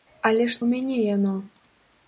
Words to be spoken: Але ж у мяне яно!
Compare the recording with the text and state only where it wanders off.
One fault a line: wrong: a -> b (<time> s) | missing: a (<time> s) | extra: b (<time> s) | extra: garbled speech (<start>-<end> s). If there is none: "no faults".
no faults